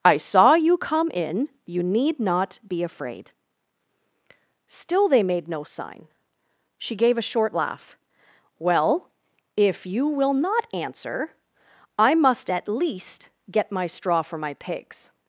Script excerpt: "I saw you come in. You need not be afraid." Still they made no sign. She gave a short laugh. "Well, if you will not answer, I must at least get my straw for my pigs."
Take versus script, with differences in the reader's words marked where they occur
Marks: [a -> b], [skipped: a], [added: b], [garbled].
"I saw you come in. You need not be afraid." Still they made no sign. She gave a short laugh. "Well, if you will not answer, I must at least get my straw for my pigs."